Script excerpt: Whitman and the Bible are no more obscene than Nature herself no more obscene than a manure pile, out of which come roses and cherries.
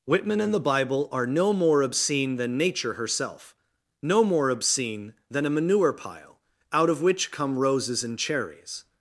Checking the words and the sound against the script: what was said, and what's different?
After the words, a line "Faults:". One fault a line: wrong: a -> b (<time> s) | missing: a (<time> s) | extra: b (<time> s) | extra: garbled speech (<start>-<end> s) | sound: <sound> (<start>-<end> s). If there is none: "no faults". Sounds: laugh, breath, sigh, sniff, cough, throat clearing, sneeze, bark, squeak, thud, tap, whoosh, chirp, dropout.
Whitman and the Bible are no more obscene than Nature herself no more obscene than a manure pile, out of which come roses and cherries.
Faults:
no faults